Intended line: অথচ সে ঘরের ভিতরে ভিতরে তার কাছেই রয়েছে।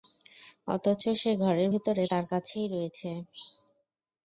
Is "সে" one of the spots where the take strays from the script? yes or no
no